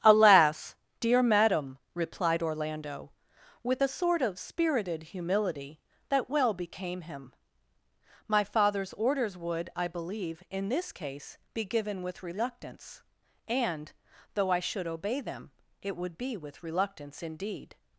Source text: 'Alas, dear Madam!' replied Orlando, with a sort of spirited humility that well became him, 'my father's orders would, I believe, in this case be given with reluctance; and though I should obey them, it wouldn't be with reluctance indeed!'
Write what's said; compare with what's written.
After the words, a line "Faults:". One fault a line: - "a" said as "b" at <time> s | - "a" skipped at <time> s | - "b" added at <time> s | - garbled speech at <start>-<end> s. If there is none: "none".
'Alas, dear Madam!' replied Orlando, with a sort of spirited humility that well became him, 'my father's orders would, I believe, in this case be given with reluctance; and though I should obey them, it would be with reluctance indeed!'
Faults:
- "wouldn't" said as "would" at 16.0 s